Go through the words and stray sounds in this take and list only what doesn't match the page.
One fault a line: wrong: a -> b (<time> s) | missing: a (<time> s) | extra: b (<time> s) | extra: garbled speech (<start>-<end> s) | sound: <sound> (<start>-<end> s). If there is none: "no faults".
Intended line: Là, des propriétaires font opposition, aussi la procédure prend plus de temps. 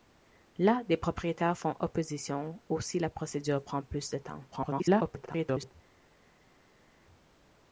extra: garbled speech (4.5-5.7 s)